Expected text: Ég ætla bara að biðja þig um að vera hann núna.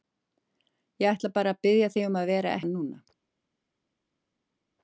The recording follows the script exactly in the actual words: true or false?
true